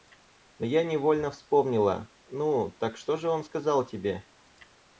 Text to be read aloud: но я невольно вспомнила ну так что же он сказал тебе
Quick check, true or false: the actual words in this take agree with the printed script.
true